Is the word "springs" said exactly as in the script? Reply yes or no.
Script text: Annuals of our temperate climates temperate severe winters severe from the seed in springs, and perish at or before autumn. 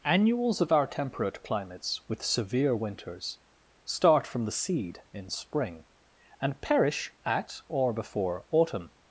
no